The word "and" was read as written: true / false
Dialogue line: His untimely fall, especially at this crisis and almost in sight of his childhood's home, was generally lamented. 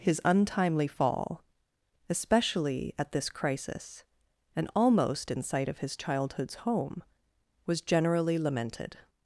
true